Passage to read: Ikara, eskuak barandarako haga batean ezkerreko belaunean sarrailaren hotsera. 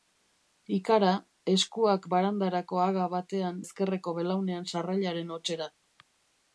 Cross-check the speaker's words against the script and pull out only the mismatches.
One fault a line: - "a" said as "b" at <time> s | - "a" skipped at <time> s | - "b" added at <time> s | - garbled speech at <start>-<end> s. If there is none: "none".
none